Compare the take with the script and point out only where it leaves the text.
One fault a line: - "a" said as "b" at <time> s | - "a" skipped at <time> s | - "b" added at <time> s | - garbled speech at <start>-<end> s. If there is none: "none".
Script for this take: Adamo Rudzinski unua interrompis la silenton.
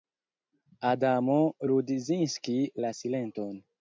- "unua interrompis" skipped at 2.5 s